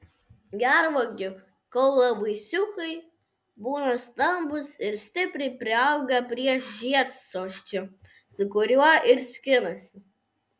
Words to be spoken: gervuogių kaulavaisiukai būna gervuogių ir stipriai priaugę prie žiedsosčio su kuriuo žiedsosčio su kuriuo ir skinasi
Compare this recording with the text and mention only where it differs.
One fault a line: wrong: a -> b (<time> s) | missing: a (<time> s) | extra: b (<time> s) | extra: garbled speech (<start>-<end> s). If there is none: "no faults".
wrong: gervuogių -> stambūs (4.0 s)
missing: žiedsosčio su kuriuo (8.9 s)